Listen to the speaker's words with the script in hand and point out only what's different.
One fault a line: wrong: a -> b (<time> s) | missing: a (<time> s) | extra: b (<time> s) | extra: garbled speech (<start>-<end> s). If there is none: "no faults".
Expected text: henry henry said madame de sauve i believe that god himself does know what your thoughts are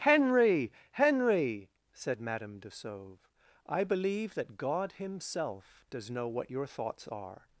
no faults